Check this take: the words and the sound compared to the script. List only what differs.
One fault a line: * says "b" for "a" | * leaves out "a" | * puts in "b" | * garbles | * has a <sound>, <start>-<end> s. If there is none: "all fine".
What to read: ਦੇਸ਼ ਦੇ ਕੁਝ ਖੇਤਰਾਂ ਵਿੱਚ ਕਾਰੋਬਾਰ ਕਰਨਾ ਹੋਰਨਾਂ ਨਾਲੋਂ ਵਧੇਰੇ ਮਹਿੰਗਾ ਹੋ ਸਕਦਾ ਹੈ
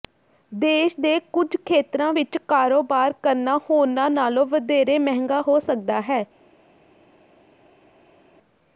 all fine